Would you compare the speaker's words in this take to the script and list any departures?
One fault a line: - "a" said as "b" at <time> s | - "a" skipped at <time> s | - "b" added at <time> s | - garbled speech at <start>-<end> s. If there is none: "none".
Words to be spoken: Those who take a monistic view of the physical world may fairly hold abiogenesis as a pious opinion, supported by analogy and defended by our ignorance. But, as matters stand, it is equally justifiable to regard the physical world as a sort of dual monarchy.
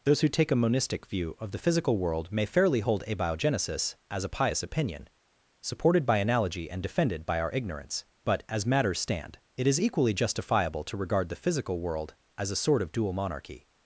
none